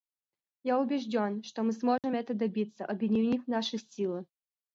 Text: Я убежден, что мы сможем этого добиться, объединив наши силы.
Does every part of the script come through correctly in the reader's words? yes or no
yes